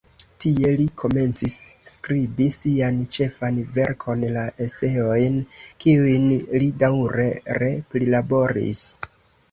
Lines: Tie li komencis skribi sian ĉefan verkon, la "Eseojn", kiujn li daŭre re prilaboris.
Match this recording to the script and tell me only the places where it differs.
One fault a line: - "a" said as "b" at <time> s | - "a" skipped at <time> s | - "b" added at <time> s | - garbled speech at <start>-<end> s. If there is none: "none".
none